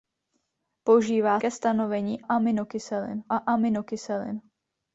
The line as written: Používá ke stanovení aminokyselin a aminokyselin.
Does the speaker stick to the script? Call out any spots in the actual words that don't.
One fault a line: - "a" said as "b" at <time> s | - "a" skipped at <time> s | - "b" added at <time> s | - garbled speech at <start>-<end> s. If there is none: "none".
none